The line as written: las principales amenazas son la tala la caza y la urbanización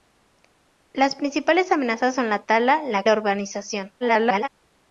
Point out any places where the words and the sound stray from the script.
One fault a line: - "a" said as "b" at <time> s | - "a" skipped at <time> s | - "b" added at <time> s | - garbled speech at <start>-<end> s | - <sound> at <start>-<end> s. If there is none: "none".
- "caza y" skipped at 3.0 s
- garbled speech at 4.0-4.5 s